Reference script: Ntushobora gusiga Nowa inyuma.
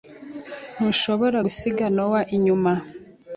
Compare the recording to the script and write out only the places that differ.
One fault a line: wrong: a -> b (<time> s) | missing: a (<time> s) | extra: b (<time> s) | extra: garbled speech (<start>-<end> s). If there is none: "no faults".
no faults